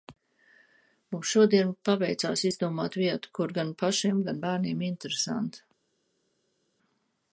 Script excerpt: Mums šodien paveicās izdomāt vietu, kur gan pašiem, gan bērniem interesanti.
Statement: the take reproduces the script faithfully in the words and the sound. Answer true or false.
true